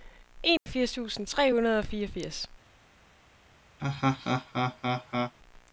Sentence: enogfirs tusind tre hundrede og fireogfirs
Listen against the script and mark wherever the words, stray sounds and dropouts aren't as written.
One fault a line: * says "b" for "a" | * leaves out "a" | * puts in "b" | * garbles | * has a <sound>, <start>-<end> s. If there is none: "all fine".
* has a dropout, 0.6-0.7 s
* has a laugh, 3.8-5.3 s